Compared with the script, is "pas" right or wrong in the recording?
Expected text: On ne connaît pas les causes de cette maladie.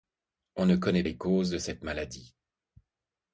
wrong